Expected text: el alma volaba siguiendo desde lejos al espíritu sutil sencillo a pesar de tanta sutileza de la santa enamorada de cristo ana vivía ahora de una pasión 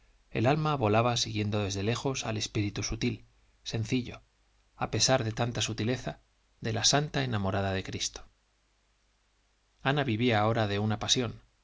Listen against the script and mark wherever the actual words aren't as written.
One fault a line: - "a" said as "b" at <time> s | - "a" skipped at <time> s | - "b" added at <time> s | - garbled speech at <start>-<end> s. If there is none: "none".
none